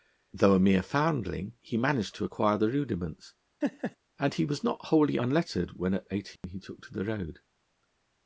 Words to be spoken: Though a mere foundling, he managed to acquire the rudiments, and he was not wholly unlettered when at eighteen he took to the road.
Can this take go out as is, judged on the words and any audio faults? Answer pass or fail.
fail